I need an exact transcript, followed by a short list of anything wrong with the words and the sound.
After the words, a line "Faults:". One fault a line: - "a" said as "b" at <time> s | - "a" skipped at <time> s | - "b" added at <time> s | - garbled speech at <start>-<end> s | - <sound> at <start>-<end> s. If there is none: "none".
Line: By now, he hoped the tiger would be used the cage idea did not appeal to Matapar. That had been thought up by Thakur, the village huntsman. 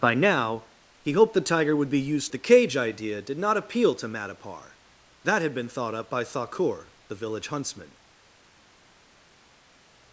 By now, he hoped the tiger would be used the cage idea did not appeal to Matapar. That had been thought up by Thakur, the village huntsman.
Faults:
none